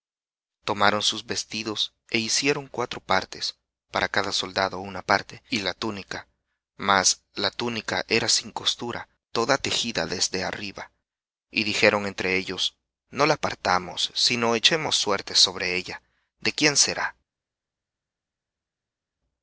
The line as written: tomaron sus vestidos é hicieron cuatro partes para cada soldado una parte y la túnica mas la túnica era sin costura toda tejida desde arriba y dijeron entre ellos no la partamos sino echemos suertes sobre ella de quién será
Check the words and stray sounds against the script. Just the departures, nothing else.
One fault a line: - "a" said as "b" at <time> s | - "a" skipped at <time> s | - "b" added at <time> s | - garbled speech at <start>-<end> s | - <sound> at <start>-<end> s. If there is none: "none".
none